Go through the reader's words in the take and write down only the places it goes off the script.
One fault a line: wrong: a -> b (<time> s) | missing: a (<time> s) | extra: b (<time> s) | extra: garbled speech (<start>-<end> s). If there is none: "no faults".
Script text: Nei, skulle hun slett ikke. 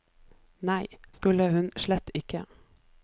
no faults